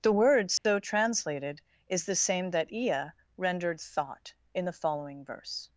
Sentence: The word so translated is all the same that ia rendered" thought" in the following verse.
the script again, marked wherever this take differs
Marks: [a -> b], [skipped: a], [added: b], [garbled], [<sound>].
The word so [dropout] translated is [skipped: all] the same that ia rendered" thought" in the following verse.